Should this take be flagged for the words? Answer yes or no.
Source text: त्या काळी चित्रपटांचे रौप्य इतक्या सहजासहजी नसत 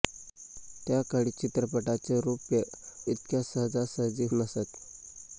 no